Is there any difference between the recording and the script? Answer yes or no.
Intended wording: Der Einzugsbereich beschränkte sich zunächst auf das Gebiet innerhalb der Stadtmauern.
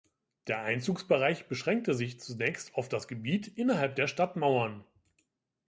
no